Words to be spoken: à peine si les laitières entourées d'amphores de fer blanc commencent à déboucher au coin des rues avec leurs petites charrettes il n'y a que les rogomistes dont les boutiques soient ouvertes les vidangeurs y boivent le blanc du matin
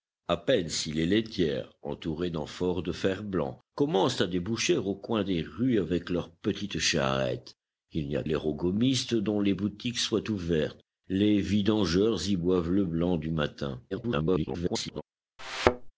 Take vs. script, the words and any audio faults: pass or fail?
fail